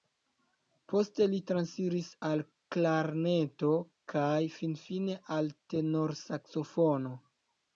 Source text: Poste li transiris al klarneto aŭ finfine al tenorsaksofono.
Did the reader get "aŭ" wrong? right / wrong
wrong